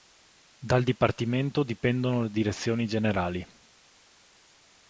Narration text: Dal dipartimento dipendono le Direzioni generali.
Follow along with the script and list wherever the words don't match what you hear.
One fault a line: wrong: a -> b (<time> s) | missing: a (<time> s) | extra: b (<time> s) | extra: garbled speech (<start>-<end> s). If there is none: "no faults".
no faults